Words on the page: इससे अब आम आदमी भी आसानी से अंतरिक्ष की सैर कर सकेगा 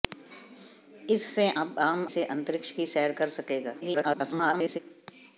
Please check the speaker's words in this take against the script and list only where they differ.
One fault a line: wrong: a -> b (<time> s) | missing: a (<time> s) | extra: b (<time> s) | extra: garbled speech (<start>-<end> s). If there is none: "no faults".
missing: आदमी भी आसानी (2.1 s)
extra: garbled speech (3.8-4.8 s)